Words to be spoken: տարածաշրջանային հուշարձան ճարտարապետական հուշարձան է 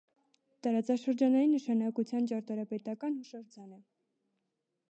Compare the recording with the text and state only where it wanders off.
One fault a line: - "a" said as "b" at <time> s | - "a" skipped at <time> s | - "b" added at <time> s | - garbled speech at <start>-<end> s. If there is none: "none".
- "հուշարձան" said as "նշանակության" at 1.6 s